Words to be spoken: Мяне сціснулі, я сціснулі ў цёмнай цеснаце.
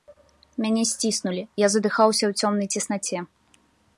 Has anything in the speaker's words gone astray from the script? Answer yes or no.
yes